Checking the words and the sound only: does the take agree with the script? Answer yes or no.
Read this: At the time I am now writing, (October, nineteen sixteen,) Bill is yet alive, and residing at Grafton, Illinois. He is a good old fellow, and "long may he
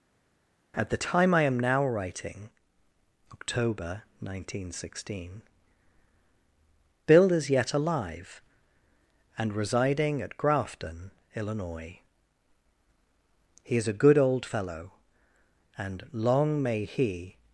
yes